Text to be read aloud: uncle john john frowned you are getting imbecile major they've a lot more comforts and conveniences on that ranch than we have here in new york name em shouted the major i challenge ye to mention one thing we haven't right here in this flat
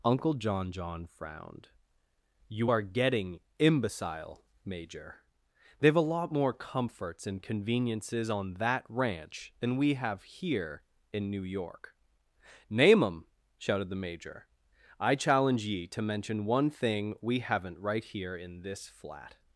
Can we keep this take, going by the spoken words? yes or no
yes